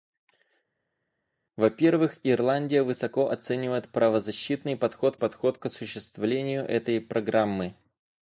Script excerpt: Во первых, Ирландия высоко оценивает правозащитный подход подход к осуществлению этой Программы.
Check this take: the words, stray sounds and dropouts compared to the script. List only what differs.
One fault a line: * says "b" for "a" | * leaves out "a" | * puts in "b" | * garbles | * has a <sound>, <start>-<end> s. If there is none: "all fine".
all fine